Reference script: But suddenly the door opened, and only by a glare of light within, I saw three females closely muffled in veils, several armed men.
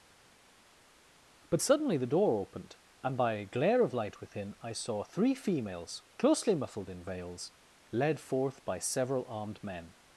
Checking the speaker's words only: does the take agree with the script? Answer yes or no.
no